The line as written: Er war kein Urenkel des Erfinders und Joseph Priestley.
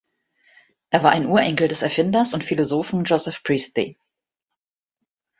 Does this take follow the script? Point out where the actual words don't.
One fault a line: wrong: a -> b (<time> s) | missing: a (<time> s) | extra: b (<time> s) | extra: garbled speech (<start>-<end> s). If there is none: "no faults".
wrong: kein -> ein (1.1 s)
extra: Philosophen (2.4 s)